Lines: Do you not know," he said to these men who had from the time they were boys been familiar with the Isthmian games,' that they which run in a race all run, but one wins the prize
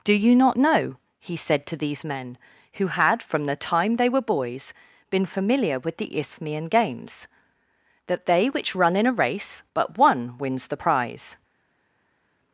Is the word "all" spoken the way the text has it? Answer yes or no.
no